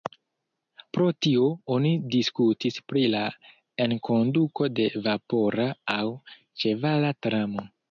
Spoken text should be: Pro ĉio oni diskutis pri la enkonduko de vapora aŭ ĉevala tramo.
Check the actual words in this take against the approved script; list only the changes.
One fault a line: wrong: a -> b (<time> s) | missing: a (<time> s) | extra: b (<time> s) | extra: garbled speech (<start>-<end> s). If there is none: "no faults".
wrong: ĉio -> tio (1.2 s)